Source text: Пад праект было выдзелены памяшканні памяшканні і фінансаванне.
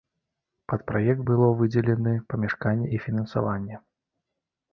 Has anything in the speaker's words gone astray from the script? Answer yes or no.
yes